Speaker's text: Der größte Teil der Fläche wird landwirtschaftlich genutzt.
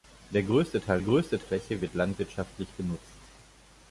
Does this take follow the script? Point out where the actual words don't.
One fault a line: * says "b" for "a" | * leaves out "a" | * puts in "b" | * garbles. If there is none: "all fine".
* says "größte" for "der"